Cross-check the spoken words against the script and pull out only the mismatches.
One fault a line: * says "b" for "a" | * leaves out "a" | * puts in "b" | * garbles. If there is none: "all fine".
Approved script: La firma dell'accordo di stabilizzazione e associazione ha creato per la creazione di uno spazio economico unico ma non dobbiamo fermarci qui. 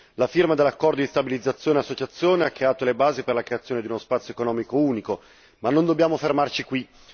* puts in "le basi"